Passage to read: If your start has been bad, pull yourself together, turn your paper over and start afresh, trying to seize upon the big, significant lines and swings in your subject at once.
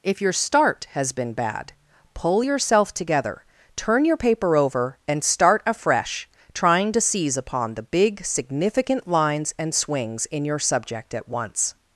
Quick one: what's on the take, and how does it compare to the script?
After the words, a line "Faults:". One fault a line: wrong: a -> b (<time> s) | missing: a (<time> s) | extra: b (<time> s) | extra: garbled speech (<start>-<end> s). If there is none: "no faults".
If your start has been bad, pull yourself together, turn your paper over and start afresh, trying to seize upon the big, significant lines and swings in your subject at once.
Faults:
no faults